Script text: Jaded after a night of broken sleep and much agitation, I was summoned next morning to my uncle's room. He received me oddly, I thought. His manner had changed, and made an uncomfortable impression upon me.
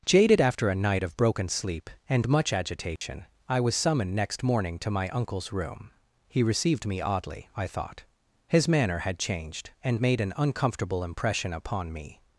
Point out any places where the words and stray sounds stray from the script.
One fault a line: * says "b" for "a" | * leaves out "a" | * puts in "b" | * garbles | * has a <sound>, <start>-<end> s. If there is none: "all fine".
* has a dropout, 3.0-3.0 s